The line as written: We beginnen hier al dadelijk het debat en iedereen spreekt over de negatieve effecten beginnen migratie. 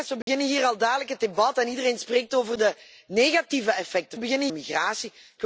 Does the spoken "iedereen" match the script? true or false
true